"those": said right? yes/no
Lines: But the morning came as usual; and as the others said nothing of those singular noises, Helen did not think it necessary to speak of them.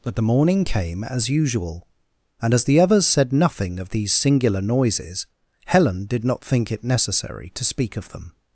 no